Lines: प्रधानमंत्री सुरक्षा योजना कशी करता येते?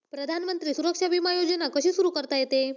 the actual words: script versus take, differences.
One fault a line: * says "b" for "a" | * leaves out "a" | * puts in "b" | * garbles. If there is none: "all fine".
* puts in "विमा"
* puts in "सुरू"